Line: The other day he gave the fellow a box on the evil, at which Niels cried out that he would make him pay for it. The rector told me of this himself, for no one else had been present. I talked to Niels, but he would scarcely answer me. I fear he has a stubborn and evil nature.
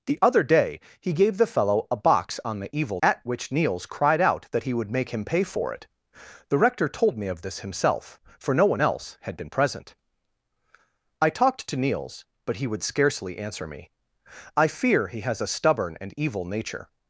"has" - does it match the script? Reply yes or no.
yes